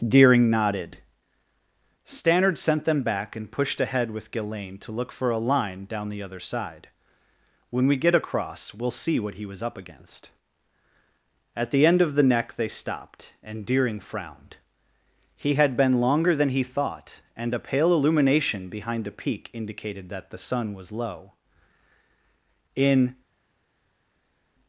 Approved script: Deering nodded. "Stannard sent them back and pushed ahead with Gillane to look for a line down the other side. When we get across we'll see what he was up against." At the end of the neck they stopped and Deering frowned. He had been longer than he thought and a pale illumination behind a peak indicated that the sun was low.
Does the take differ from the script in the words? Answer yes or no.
yes